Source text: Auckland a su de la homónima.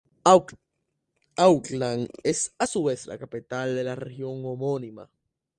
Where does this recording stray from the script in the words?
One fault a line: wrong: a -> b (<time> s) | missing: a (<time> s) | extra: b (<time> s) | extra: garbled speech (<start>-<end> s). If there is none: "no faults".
extra: es (2.2 s)
extra: vez la capital (2.8 s)
extra: región (4.0 s)